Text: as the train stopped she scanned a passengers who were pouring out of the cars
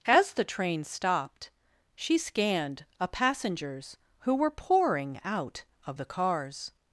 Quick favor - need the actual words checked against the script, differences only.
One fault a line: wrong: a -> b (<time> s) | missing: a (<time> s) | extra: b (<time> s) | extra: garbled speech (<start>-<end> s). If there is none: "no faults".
no faults